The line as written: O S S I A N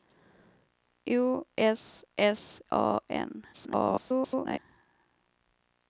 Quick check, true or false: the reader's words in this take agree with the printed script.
false